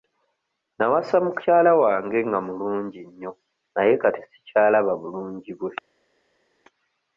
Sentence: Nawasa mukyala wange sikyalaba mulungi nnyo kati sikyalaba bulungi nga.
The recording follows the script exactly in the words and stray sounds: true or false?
false